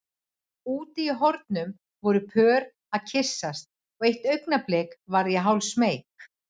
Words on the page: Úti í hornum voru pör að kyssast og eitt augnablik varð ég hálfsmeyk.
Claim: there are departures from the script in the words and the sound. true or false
false